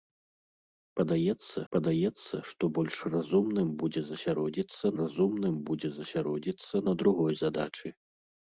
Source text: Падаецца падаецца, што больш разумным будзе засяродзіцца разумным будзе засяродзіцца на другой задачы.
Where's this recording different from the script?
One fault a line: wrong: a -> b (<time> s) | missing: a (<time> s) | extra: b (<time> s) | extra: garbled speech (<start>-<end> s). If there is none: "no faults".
no faults